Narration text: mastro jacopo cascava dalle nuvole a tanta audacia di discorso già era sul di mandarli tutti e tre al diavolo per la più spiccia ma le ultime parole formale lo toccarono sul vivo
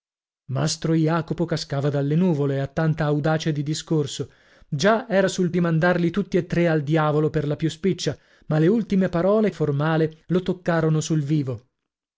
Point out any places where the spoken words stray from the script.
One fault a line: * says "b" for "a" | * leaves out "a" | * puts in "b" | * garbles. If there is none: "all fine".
all fine